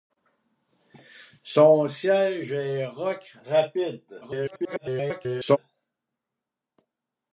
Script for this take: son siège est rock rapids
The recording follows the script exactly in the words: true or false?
false